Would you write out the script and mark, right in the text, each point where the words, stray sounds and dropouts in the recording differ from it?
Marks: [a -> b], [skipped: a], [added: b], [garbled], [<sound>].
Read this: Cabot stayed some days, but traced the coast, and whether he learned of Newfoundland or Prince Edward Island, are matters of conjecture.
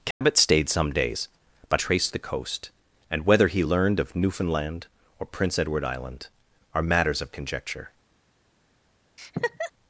Cabot [dropout] stayed some days, but traced the coast, and whether he learned of Newfoundland or Prince Edward Island, are matters of conjecture. [laugh]